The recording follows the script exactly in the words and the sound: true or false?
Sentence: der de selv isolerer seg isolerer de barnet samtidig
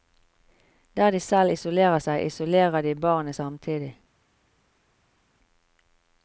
true